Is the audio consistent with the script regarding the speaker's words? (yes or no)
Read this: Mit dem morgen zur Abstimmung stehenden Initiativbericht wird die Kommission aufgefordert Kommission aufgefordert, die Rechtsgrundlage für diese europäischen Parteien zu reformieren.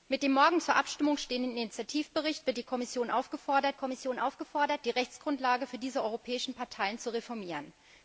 yes